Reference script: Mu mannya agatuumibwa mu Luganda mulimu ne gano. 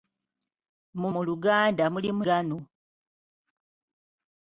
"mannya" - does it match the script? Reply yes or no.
no